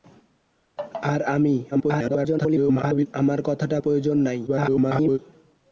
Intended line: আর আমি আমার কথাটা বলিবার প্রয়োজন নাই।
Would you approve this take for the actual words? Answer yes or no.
no